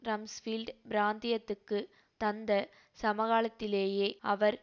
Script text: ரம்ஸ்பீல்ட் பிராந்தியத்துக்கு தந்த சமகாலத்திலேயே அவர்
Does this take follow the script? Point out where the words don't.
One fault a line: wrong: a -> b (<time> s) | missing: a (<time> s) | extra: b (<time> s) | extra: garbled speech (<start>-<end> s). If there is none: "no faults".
no faults